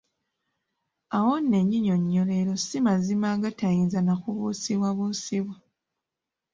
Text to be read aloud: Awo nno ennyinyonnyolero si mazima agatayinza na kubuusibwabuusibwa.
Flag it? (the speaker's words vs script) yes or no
no